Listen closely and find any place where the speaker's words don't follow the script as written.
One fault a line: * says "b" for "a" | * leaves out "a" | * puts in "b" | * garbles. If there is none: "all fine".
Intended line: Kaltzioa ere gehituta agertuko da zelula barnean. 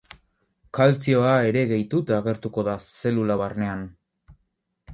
all fine